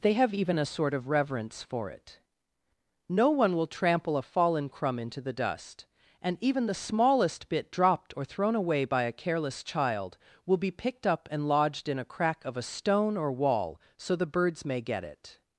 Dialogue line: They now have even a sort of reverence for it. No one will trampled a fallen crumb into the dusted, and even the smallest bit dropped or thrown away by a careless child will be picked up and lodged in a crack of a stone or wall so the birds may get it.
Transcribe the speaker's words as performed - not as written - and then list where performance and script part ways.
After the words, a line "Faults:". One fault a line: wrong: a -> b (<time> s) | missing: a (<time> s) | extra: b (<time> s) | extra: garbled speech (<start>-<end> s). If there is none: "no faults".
They have even a sort of reverence for it. No one will trample a fallen crumb into the dust, and even the smallest bit dropped or thrown away by a careless child will be picked up and lodged in a crack of a stone or wall so the birds may get it.
Faults:
missing: now (0.1 s)
wrong: trampled -> trample (3.7 s)
wrong: dusted -> dust (5.3 s)